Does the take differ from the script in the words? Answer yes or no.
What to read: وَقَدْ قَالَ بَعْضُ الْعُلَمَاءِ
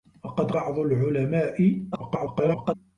yes